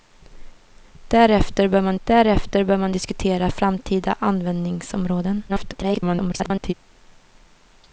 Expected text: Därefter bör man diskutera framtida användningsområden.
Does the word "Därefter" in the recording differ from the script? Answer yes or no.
no